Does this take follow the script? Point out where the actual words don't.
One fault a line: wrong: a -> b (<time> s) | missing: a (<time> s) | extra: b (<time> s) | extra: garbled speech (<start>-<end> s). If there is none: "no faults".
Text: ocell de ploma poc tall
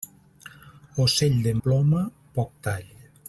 no faults